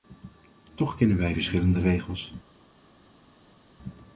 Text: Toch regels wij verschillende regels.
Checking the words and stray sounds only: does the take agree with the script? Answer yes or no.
no